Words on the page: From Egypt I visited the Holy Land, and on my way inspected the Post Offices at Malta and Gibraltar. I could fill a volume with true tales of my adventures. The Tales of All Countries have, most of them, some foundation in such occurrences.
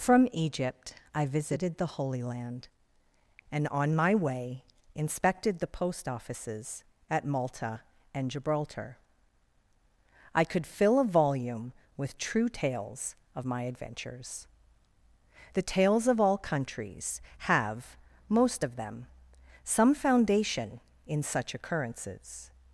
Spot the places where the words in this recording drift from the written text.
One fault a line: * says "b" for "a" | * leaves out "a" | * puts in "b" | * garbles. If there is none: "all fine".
all fine